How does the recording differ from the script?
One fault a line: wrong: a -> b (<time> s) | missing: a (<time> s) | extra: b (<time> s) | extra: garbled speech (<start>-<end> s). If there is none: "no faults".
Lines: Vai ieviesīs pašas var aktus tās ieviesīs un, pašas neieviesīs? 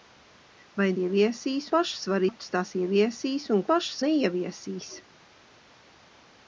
no faults